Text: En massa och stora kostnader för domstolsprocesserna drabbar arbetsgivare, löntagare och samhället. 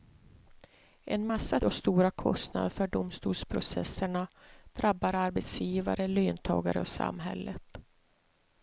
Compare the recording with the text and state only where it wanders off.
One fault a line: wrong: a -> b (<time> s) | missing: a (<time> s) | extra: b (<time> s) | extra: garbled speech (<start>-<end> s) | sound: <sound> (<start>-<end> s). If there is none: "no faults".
no faults